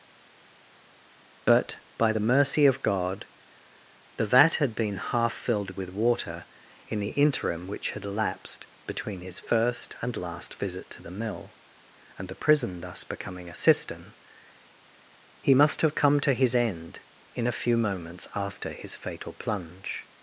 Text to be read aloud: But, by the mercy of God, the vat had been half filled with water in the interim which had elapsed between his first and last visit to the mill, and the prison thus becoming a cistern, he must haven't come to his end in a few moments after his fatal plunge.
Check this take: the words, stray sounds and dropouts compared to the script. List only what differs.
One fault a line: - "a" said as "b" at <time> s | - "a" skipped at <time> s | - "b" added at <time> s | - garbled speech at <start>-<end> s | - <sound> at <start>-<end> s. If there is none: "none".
- "haven't" said as "have" at 15.8 s